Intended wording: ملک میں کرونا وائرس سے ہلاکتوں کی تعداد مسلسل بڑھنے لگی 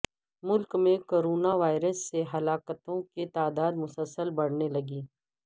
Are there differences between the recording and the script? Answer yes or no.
no